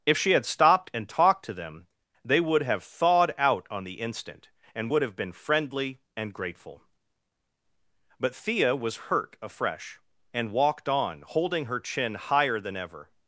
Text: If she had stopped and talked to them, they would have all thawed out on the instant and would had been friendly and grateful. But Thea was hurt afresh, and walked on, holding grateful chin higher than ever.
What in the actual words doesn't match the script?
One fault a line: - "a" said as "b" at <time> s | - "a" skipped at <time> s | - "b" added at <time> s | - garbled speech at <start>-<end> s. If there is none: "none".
- "all" skipped at 2.8 s
- "had" said as "have" at 5.0 s
- "grateful" said as "her" at 11.6 s